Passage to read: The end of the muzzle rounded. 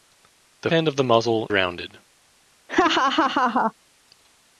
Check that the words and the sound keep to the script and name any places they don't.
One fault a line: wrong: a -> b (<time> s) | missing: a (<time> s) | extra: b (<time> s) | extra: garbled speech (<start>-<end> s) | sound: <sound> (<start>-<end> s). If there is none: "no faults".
sound: laugh (2.7-3.7 s)